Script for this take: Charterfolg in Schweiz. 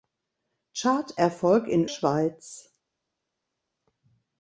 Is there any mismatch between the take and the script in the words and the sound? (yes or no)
no